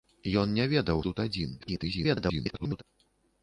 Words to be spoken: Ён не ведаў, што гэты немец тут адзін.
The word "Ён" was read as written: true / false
true